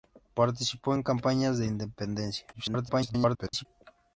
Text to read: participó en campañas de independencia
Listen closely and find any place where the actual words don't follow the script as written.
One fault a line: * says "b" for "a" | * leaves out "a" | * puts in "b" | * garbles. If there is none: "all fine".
* garbles